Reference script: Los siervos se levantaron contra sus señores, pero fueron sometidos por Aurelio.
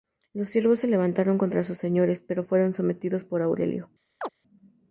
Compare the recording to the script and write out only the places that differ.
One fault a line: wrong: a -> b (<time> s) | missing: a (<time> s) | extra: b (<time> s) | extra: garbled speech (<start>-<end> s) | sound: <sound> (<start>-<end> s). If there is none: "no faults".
sound: chirp (4.2-4.3 s)